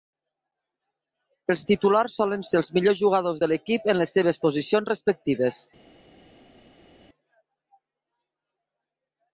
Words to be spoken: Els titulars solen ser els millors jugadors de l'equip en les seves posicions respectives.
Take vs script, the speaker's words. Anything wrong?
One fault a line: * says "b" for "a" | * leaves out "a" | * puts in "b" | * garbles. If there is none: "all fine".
all fine